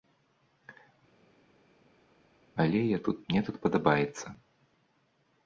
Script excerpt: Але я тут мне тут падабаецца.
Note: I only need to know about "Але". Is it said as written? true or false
true